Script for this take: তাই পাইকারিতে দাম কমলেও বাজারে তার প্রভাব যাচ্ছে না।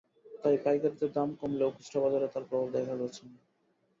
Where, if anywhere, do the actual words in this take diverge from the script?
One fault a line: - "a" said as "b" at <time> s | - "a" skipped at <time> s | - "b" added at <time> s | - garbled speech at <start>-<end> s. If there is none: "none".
- "খুচরা" added at 1.7 s
- "দেখা" added at 2.8 s